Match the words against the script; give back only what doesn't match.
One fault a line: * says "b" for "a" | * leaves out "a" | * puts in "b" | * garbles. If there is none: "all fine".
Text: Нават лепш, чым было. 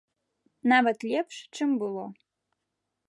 all fine